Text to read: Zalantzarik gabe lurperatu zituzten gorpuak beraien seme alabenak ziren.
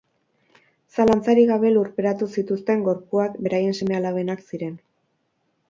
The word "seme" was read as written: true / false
true